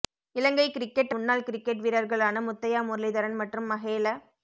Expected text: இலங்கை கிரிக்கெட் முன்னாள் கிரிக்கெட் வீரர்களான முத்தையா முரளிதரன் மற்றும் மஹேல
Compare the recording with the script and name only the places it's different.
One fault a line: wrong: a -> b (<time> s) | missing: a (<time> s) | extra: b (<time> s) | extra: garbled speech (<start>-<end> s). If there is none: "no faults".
no faults